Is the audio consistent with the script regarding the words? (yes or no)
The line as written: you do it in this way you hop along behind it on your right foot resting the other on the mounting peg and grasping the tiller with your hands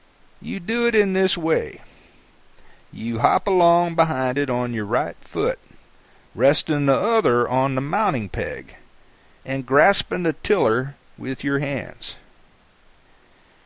yes